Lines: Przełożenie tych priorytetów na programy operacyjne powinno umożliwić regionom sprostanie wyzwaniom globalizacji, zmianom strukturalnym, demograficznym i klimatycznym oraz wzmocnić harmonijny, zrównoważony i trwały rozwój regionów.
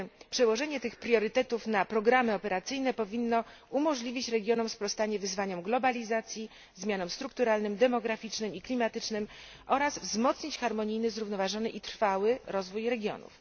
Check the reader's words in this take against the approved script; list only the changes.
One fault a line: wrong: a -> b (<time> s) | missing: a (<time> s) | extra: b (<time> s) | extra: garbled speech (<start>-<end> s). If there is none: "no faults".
no faults